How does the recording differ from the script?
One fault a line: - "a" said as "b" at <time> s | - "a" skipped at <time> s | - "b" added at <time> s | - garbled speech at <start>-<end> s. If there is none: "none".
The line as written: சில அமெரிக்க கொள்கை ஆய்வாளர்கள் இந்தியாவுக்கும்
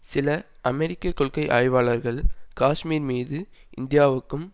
- "காஷ்மீர் மீது" added at 2.6 s